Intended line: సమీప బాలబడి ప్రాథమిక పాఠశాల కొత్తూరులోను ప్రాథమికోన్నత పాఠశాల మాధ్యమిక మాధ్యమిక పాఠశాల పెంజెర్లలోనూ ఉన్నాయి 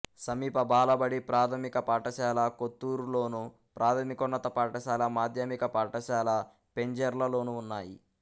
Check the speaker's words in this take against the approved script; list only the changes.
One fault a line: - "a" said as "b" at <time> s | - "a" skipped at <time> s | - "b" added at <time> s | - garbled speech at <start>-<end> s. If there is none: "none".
- "మాధ్యమిక" skipped at 5.6 s